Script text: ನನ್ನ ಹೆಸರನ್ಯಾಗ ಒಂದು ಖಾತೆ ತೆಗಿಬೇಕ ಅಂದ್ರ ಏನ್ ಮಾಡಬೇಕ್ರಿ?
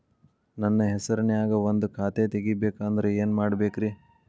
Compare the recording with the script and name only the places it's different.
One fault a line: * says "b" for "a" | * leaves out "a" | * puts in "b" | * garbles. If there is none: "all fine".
all fine